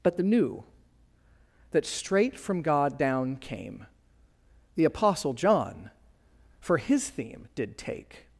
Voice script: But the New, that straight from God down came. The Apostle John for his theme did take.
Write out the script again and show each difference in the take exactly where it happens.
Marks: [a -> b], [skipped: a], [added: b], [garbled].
But the New, that straight from God down came. The Apostle John for his theme did take.